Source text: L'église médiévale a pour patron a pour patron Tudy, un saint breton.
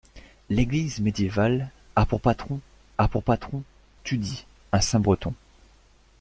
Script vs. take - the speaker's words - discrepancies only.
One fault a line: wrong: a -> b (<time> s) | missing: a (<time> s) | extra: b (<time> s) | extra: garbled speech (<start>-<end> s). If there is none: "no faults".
no faults